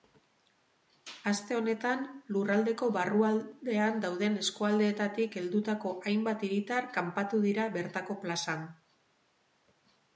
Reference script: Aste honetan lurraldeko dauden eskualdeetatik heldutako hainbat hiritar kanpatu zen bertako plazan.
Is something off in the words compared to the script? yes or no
yes